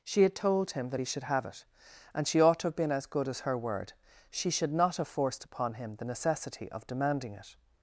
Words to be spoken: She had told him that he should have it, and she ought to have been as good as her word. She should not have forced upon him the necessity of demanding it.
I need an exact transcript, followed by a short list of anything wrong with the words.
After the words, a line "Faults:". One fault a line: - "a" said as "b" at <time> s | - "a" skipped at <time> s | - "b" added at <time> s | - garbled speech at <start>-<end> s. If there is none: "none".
She had told him that he should have it, and she ought to have been as good as her word. She should not have forced upon him the necessity of demanding it.
Faults:
none